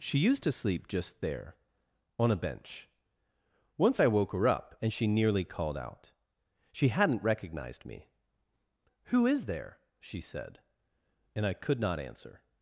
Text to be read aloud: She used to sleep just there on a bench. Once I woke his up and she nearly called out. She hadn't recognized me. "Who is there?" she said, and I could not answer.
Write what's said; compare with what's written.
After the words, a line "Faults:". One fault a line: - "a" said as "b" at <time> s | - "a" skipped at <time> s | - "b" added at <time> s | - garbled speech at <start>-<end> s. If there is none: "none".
She used to sleep just there on a bench. Once I woke her up and she nearly called out. She hadn't recognized me. "Who is there?" she said, and I could not answer.
Faults:
- "his" said as "her" at 4.3 s